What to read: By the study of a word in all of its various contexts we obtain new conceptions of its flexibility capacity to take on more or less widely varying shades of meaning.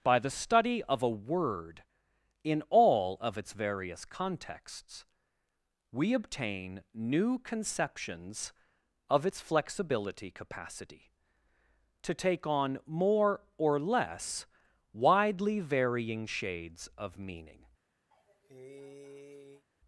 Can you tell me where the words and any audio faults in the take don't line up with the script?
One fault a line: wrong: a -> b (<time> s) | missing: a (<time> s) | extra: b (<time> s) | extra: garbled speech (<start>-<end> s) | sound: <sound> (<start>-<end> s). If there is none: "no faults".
sound: cough (18.1-19.7 s)